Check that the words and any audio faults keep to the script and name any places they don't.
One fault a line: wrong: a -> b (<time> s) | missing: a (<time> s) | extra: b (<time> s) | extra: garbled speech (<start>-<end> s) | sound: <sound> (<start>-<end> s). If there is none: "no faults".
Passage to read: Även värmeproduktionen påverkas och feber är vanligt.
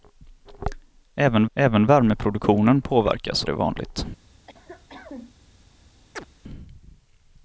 extra: även (1.5 s)
missing: och feber (3.4 s)
sound: cough (4.5-5.4 s)
sound: chirp (6.1-6.3 s)